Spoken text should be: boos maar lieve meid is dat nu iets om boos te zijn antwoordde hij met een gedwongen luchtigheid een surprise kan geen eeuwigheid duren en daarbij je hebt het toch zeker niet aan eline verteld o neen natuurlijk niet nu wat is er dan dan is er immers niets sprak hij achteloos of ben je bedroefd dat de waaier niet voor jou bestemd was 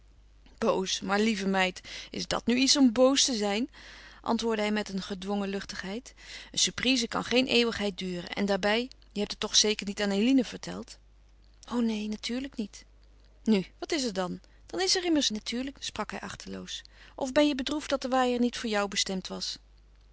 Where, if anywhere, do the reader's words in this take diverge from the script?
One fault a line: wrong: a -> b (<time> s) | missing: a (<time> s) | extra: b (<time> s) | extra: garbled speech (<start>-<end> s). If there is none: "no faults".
wrong: niets -> natuurlijk (15.3 s)